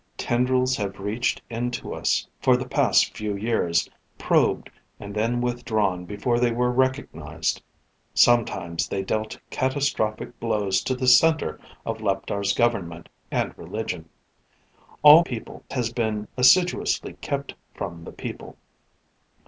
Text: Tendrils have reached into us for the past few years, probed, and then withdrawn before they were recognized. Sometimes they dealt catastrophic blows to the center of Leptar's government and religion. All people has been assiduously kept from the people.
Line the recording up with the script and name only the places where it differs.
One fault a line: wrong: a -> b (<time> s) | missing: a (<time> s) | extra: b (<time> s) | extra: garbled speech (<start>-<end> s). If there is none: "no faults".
no faults